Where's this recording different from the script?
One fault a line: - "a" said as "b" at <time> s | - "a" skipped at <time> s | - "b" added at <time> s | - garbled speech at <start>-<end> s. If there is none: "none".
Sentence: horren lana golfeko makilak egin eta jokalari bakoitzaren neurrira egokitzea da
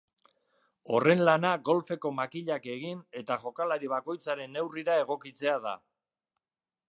none